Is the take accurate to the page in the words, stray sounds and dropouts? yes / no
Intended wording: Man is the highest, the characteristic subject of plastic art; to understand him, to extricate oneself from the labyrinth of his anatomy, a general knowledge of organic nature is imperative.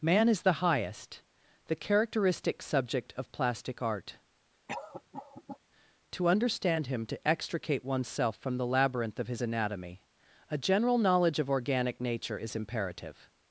no